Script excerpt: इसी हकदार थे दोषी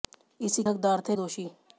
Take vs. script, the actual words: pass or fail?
pass